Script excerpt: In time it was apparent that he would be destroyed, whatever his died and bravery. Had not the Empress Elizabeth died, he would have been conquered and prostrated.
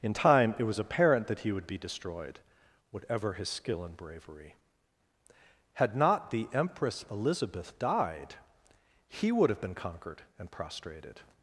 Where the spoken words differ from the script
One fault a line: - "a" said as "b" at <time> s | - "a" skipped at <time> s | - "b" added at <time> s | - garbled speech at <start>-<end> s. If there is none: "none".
- "died" said as "skill" at 3.5 s